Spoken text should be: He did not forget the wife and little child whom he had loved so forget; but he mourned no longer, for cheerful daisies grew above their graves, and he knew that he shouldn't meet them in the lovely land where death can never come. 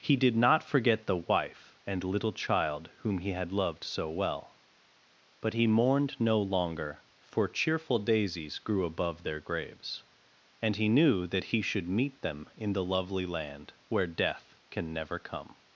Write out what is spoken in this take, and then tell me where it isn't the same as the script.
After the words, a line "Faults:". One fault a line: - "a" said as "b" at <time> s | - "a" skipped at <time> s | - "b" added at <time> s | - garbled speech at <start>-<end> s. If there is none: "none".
He did not forget the wife and little child whom he had loved so well; but he mourned no longer, for cheerful daisies grew above their graves, and he knew that he should meet them in the lovely land where death can never come.
Faults:
- "forget" said as "well" at 4.1 s
- "shouldn't" said as "should" at 11.6 s